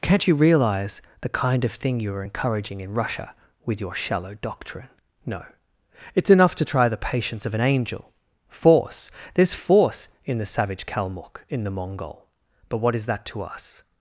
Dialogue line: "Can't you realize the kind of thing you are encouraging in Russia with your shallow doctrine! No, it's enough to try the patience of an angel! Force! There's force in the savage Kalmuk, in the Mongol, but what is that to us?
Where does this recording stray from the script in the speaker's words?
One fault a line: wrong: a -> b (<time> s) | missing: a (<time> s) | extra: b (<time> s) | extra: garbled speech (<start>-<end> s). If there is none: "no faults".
no faults